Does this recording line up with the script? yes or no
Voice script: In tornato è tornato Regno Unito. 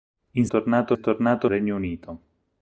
yes